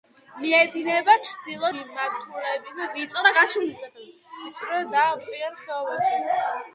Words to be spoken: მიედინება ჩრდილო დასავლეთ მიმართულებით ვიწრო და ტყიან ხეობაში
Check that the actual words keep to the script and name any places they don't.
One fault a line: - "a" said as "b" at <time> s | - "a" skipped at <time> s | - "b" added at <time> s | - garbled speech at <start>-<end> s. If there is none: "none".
- "დასავლეთ" skipped at 1.7 s